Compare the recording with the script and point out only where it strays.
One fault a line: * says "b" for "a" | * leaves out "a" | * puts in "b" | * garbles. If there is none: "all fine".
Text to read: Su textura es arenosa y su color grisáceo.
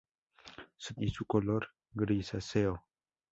* leaves out "textura es arenosa"